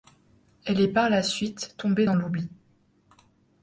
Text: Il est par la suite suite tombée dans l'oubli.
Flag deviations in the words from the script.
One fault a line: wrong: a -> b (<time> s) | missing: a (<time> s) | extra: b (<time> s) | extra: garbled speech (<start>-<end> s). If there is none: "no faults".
wrong: Il -> Elle (0.7 s)
missing: suite (1.8 s)